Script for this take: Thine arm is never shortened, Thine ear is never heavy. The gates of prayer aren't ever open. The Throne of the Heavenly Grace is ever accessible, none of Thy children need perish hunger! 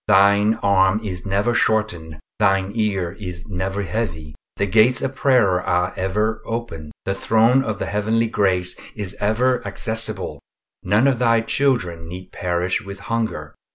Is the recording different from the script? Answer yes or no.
yes